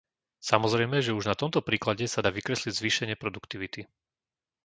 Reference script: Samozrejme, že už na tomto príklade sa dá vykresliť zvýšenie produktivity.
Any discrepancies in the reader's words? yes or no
no